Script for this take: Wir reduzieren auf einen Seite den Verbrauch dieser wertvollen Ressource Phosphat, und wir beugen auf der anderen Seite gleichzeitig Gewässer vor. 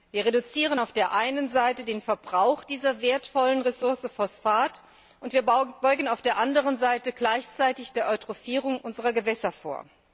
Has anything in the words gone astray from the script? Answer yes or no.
yes